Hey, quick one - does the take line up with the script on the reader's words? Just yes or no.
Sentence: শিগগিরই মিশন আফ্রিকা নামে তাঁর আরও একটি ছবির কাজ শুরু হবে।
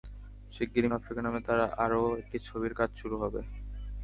no